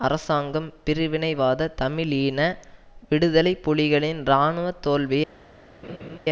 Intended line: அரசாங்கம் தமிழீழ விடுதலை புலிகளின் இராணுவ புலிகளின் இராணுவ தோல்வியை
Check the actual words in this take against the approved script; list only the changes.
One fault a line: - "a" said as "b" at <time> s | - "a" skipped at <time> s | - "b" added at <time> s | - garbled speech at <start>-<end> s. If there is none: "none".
- "பிரிவினைவாத" added at 0.8 s
- "புலிகளின் இராணுவ" skipped at 4.7 s